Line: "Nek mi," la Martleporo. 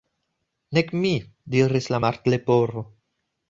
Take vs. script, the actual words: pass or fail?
fail